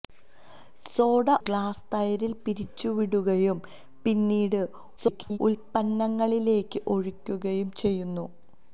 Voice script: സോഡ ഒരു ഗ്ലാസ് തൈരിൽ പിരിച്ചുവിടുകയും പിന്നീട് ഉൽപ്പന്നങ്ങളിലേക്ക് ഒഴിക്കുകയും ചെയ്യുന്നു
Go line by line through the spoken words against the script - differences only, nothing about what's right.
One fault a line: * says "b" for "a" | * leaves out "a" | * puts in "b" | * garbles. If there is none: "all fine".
* leaves out "ഒരു"
* garbles